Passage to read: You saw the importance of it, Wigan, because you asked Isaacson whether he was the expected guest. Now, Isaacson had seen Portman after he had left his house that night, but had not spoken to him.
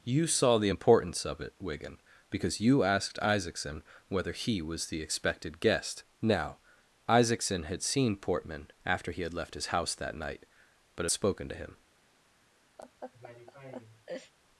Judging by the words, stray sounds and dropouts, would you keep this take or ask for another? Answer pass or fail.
fail